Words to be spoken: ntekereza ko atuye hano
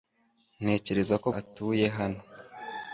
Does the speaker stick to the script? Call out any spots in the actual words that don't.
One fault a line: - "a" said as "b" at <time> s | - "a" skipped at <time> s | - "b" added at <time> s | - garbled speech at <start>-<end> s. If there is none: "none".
none